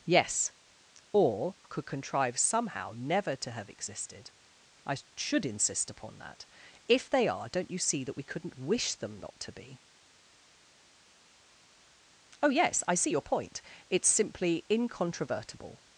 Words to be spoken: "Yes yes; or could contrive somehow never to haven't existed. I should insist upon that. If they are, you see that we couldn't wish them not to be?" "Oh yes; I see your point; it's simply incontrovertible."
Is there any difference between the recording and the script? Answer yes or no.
yes